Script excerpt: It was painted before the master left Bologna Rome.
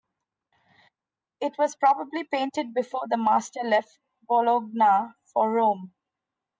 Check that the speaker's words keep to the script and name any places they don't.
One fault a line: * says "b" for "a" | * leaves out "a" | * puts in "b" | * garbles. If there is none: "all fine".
* puts in "probably"
* puts in "for"